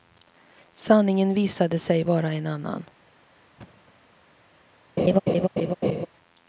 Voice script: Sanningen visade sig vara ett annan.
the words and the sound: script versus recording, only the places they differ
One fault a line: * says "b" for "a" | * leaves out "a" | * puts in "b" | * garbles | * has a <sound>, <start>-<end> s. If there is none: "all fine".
* says "en" for "ett"
* has a thud, 3.6-3.9 s
* has a laugh, 5.0-6.1 s